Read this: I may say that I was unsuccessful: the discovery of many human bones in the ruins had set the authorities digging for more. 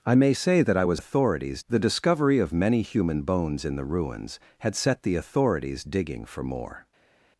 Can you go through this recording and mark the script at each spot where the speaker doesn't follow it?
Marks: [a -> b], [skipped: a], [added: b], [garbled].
I may say that I was [unsuccessful: -> authorities] the discovery of many human bones in the ruins had set the authorities digging for more.